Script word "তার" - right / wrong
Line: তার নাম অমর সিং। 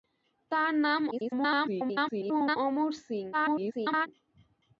right